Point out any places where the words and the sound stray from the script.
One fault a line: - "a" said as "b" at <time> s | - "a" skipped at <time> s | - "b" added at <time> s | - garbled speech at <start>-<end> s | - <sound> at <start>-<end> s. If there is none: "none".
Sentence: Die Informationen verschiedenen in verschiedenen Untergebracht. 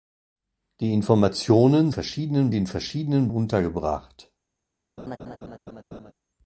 - laugh at 5.0-6.1 s